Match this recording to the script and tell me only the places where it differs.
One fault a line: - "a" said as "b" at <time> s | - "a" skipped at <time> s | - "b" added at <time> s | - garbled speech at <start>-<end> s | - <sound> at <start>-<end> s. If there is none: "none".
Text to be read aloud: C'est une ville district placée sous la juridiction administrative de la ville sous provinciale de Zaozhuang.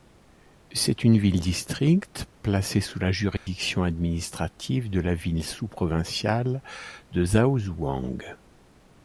- dropout at 3.4-3.5 s